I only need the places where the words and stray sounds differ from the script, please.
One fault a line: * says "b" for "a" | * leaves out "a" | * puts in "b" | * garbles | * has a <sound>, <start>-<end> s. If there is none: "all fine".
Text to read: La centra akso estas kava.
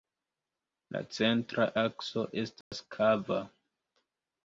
* has a dropout, 2.6-2.7 s